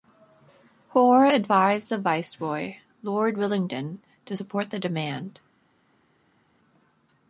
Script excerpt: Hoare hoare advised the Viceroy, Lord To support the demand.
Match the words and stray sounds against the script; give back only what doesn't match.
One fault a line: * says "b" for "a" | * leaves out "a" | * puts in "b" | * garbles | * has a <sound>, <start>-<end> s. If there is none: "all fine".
* leaves out "hoare"
* puts in "Willingdon"